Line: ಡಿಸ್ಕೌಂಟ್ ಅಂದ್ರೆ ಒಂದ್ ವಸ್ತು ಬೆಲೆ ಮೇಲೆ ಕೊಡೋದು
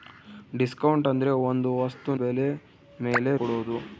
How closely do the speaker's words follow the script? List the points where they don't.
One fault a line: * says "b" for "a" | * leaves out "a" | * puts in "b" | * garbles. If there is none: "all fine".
all fine